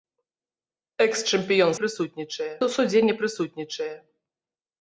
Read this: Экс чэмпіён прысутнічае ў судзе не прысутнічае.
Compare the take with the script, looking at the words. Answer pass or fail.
pass